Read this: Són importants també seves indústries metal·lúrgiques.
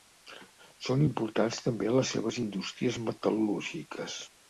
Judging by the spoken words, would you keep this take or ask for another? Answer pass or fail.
fail